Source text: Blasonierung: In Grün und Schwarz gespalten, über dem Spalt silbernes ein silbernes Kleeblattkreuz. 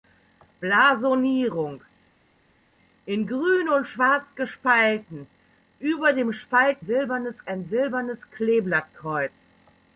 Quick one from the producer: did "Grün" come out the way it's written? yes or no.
yes